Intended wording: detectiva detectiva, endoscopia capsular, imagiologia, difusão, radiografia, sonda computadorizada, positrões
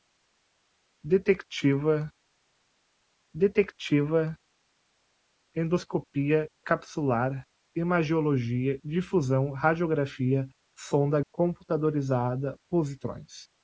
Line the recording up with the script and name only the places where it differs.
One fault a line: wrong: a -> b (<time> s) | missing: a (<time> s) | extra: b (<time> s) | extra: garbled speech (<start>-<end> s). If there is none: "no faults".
no faults